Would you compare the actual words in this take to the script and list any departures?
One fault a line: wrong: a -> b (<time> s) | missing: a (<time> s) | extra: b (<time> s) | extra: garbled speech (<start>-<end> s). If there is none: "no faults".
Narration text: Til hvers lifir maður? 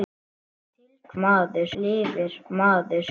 wrong: hvers -> maður (1.2 s)